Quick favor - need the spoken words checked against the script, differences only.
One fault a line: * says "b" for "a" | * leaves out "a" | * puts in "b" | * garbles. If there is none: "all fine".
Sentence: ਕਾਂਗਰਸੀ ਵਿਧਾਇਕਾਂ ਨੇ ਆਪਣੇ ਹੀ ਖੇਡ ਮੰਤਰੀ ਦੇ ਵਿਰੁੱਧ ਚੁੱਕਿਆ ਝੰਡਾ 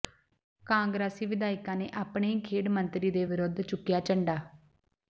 all fine